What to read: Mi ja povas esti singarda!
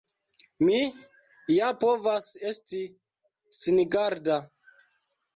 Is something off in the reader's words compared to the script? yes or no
no